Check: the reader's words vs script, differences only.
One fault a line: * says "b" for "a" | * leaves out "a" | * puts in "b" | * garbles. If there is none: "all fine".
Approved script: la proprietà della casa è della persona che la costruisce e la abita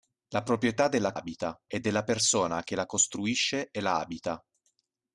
* says "abita" for "casa"